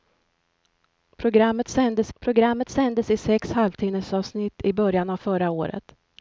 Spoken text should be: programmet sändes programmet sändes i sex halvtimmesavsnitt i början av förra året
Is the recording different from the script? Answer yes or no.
no